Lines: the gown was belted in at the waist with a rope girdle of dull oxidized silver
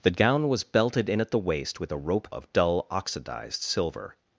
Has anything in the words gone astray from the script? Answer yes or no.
yes